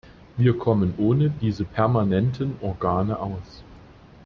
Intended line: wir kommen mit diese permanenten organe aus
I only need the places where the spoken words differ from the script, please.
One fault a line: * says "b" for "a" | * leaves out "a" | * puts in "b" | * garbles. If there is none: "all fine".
* says "ohne" for "mit"